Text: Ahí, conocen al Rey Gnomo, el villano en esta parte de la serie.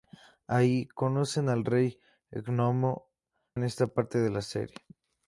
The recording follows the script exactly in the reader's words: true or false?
false